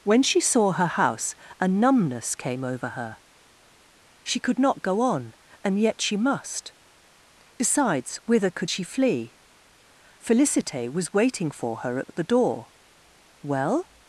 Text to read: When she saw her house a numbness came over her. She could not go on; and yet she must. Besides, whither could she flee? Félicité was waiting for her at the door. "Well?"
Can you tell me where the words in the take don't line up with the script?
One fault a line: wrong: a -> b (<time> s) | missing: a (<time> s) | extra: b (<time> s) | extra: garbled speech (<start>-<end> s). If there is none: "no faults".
extra: at (12.0 s)